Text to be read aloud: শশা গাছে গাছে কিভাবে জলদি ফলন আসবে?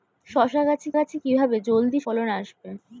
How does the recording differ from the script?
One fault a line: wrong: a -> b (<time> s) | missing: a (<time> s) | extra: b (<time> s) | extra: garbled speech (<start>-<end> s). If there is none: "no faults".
no faults